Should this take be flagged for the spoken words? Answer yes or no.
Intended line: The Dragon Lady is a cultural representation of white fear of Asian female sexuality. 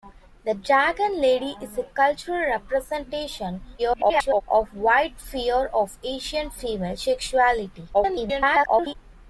yes